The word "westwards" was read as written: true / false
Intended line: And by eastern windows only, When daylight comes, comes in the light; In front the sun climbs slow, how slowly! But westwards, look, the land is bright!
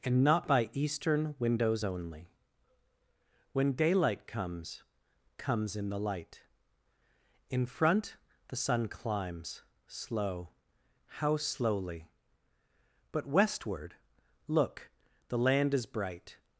false